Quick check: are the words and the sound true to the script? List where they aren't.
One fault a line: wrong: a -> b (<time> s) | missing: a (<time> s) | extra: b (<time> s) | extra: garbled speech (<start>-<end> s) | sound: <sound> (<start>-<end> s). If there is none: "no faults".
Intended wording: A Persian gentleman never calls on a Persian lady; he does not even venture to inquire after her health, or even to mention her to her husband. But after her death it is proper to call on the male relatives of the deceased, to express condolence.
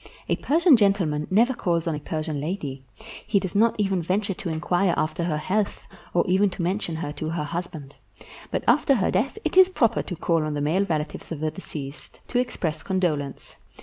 no faults